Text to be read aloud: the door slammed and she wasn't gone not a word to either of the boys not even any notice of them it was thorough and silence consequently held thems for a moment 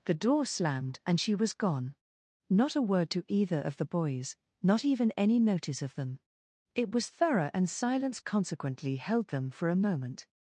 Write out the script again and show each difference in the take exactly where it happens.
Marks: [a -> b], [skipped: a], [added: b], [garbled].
the door slammed and she [wasn't -> was] gone not a word to either of the boys not even any notice of them it was thorough and silence consequently held [thems -> them] for a moment